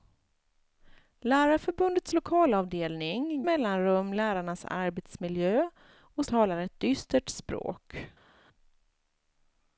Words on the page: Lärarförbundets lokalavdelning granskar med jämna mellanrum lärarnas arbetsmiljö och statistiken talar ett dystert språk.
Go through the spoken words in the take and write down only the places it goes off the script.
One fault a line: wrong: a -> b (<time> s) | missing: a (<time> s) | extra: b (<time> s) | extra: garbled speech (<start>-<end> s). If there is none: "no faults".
missing: granskar med jämna (3.4 s)
missing: statistiken (6.2 s)